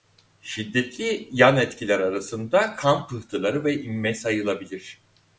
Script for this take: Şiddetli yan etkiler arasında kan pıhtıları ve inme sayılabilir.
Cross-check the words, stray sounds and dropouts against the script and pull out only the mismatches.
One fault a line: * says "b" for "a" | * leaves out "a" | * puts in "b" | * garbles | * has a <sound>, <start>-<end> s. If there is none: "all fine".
all fine